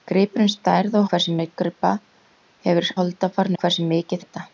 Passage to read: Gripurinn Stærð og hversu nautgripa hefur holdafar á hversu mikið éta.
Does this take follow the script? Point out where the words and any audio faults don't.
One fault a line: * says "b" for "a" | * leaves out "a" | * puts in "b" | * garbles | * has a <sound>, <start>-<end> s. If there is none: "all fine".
all fine